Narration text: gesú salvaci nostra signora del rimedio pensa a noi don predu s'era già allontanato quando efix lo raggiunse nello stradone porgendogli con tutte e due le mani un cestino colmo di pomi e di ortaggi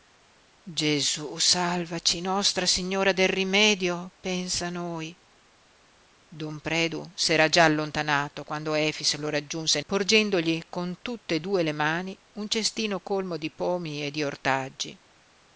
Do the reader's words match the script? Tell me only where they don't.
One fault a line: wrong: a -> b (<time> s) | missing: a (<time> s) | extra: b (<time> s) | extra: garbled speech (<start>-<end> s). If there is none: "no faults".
missing: nello stradone (9.8 s)